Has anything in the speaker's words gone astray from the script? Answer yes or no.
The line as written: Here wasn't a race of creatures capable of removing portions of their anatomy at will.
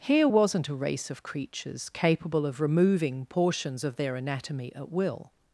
no